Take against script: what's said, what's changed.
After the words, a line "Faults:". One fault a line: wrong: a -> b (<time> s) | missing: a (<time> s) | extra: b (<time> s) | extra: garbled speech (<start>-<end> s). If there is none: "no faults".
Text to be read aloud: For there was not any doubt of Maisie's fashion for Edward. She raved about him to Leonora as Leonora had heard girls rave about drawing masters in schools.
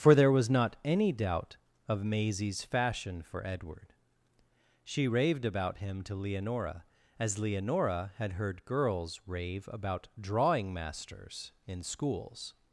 For there was not any doubt of Maisie's fashion for Edward. She raved about him to Leonora as Leonora had heard girls rave about drawing masters in schools.
Faults:
no faults